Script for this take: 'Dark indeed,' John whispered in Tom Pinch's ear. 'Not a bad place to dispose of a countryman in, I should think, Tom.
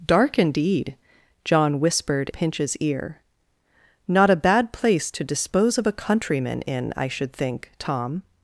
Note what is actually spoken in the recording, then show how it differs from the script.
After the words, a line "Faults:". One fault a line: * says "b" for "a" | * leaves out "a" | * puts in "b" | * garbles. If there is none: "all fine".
'Dark indeed,' John whispered Pinch's ear. 'Not a bad place to dispose of a countryman in, I should think, Tom.
Faults:
* leaves out "in Tom"